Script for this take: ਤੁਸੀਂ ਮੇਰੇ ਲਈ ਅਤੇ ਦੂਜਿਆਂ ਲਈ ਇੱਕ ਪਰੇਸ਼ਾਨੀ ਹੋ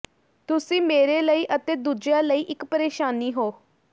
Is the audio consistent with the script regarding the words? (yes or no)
yes